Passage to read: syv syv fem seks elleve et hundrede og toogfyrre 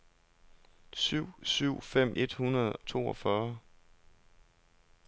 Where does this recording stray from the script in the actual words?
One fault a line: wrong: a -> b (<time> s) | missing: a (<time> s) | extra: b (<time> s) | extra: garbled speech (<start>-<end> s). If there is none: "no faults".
missing: seks elleve (2.2 s)
missing: og (2.8 s)